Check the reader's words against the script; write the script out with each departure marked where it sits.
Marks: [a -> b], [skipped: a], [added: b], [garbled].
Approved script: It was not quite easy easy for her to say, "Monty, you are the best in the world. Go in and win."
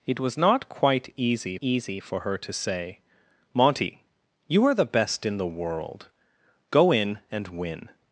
It was not quite easy easy for her to say, "Monty, you are the best in the world. Go in and win."